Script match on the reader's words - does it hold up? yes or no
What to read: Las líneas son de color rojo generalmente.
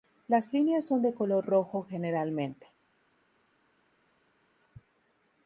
yes